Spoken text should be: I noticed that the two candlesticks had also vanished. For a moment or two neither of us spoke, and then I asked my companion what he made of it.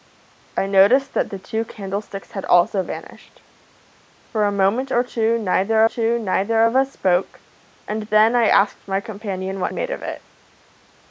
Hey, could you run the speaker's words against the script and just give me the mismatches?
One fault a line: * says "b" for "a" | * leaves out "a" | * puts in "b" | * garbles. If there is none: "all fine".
* puts in "two neither"
* leaves out "he"